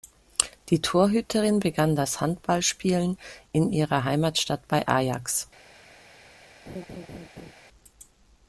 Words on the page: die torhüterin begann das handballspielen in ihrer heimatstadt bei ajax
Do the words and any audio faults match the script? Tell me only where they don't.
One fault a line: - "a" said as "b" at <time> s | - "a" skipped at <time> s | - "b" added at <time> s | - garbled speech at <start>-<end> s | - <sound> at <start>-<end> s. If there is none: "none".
- laugh at 6.7-7.5 s